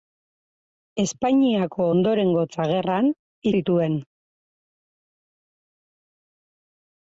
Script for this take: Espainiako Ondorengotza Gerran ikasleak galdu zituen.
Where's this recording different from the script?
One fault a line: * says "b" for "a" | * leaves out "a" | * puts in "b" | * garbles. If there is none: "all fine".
* leaves out "ikasleak galdu"